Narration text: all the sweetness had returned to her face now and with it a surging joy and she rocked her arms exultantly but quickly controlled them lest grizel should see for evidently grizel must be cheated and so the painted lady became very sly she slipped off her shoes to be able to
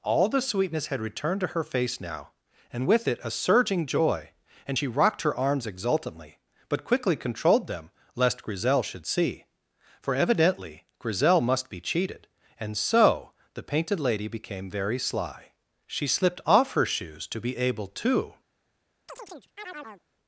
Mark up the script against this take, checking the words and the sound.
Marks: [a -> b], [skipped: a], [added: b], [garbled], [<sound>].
all the sweetness had returned to her face now and with it a surging joy and she rocked her arms exultantly but quickly controlled them lest grizel should see for evidently grizel must be cheated and so the painted lady became very sly she slipped off her shoes to be able to [chirp]